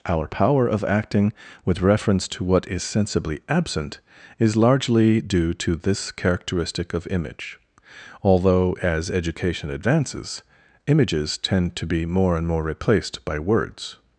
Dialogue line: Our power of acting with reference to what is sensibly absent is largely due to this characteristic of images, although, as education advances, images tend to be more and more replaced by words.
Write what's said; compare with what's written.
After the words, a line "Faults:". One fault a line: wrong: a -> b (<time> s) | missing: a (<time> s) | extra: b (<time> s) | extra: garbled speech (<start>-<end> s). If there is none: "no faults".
Our power of acting with reference to what is sensibly absent is largely due to this characteristic of image, although, as education advances, images tend to be more and more replaced by words.
Faults:
wrong: images -> image (7.1 s)